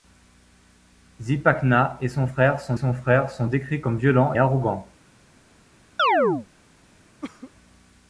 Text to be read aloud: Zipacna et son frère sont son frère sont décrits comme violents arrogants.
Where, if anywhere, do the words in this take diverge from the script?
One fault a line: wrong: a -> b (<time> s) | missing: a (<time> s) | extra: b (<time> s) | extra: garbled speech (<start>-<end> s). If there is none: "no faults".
no faults